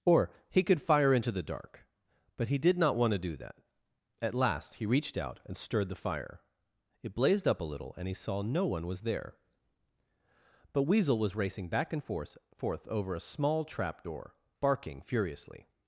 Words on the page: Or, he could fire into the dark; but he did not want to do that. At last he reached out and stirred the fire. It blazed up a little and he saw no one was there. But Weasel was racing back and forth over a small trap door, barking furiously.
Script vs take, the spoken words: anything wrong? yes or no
yes